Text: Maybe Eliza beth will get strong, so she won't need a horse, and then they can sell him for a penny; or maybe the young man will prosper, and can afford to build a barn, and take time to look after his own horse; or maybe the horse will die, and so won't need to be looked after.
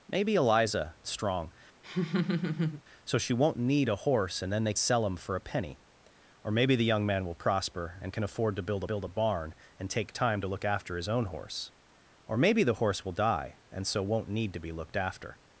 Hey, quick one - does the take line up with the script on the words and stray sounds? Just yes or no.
no